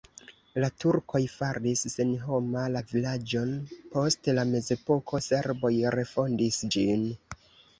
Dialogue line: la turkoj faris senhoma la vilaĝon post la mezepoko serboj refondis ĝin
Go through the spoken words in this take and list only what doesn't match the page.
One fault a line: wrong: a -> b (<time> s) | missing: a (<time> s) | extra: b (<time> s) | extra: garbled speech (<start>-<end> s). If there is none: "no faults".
no faults